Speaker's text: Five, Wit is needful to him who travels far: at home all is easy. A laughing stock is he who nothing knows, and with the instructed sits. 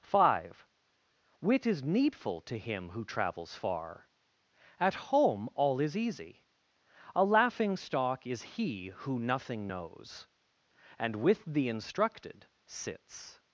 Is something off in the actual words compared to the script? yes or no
no